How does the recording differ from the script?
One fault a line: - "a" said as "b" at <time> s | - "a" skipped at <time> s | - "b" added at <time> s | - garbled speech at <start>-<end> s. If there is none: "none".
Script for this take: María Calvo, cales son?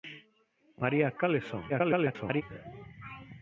- "Calvo" skipped at 1.1 s
- garbled speech at 1.7-2.4 s